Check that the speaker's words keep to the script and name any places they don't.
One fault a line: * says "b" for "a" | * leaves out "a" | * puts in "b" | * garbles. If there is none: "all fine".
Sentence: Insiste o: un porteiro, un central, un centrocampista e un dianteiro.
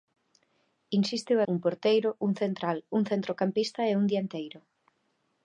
all fine